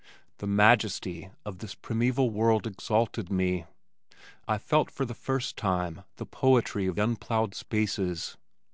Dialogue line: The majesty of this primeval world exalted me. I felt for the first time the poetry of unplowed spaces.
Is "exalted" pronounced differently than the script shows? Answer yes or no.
no